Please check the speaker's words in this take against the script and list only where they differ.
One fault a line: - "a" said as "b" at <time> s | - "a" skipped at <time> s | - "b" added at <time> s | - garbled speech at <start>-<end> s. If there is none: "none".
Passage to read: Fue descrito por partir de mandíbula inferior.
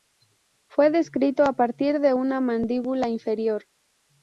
- "por" said as "a" at 1.4 s
- "una" added at 2.1 s